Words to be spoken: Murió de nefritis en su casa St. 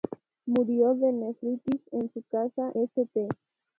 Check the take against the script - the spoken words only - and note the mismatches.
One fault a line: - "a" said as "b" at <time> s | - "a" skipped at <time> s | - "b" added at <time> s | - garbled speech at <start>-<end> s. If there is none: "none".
none